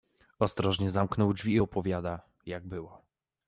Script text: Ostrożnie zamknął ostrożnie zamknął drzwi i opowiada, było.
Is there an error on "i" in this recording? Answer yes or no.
no